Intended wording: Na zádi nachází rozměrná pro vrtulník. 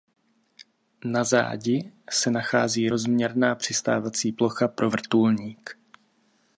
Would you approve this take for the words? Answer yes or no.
no